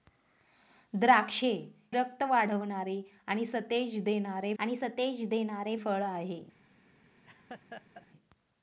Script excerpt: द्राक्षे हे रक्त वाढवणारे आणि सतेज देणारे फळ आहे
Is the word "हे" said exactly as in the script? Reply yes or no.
no